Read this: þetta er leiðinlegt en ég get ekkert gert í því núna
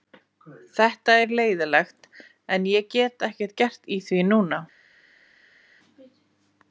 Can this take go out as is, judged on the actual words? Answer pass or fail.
pass